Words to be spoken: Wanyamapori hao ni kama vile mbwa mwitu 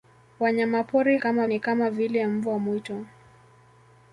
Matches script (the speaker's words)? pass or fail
fail